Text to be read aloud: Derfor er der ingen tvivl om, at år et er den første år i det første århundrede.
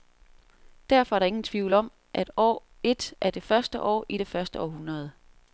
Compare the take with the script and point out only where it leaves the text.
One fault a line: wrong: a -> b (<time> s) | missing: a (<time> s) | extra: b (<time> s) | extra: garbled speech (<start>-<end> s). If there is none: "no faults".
wrong: den -> det (3.3 s)